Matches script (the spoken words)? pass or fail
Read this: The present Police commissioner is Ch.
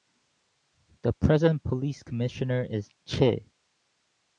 pass